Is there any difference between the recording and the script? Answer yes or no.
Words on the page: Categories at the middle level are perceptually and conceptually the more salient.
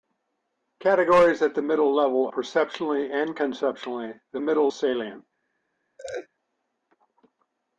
yes